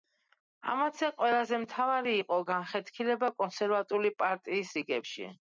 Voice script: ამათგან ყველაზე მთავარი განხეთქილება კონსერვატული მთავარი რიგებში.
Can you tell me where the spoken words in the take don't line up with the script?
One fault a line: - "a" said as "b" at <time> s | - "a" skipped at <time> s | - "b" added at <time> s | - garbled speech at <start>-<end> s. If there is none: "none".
- "იყო" added at 2.2 s
- "მთავარი" said as "პარტიის" at 4.2 s